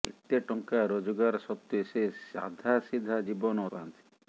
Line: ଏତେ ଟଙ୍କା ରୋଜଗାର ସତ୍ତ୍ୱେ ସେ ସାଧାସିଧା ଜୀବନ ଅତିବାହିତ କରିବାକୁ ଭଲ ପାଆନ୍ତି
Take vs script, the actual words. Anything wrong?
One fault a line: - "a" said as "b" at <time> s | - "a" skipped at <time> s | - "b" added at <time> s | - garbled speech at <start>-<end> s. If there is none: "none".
- "ଅତିବାହିତ କରିବାକୁ ଭଲ" skipped at 3.7 s